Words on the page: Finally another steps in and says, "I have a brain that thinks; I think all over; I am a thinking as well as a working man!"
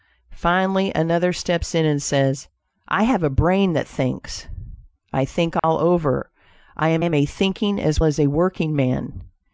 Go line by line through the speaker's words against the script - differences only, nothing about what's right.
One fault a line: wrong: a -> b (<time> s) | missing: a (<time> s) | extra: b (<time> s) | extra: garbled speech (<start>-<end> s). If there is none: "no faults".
extra: am (7.0 s)
missing: well (8.0 s)